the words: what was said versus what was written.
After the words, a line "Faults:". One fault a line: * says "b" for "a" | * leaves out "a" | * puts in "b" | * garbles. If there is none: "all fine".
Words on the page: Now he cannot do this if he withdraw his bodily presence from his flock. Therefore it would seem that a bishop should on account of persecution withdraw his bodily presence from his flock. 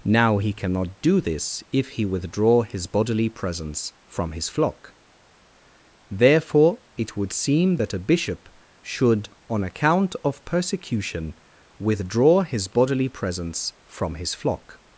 Now he cannot do this if he withdraw his bodily presence from his flock. Therefore it would seem that a bishop should on account of persecution withdraw his bodily presence from his flock.
Faults:
all fine